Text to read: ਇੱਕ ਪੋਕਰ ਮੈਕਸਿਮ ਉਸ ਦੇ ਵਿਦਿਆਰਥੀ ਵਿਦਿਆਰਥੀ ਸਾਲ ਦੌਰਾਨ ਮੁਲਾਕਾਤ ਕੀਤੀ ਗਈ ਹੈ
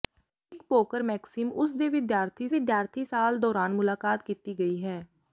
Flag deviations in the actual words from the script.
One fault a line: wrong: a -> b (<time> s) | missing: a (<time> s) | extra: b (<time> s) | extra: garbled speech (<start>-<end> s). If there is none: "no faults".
no faults